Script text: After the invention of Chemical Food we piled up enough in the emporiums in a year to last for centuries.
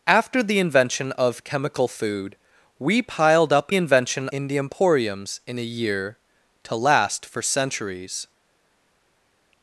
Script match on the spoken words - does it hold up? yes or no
no